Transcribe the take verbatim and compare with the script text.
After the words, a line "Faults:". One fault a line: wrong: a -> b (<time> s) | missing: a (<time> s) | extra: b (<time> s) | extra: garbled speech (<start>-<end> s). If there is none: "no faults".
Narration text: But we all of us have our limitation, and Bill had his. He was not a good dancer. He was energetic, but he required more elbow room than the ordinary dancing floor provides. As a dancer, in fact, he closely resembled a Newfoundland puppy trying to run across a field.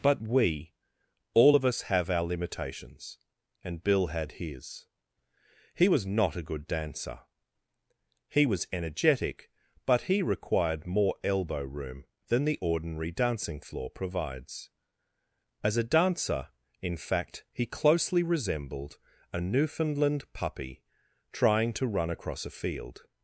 But we all of us have our limitations, and Bill had his. He was not a good dancer. He was energetic, but he required more elbow room than the ordinary dancing floor provides. As a dancer, in fact, he closely resembled a Newfoundland puppy trying to run across a field.
Faults:
wrong: limitation -> limitations (2.2 s)